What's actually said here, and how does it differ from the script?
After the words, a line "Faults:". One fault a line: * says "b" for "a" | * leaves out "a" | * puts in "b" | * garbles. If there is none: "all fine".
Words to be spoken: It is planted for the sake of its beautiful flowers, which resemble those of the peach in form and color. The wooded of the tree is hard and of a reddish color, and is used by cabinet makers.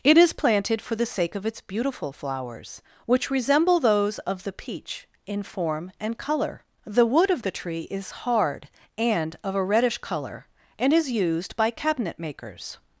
It is planted for the sake of its beautiful flowers, which resemble those of the peach in form and color. The wood of the tree is hard and of a reddish color, and is used by cabinet makers.
Faults:
* says "wood" for "wooded"